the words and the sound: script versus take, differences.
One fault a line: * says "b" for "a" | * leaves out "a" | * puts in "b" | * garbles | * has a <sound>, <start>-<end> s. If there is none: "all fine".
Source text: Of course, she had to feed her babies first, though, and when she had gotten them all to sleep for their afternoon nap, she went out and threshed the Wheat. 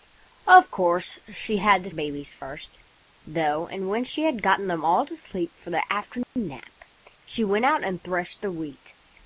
* leaves out "feed her"
* has a dropout, 6.2-6.4 s